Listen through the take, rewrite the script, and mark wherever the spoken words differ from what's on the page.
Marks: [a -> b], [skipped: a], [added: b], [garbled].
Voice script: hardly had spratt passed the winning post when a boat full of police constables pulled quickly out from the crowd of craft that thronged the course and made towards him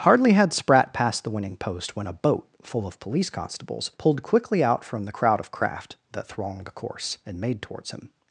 hardly had spratt passed the winning post when a boat full of police constables pulled quickly out from the crowd of craft that thronged the course and made towards him